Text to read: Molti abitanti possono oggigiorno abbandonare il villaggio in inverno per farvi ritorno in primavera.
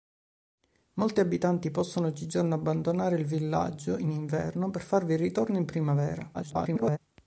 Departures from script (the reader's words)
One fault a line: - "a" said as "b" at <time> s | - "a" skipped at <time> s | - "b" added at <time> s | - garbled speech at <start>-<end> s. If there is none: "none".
- garbled speech at 6.3-7.0 s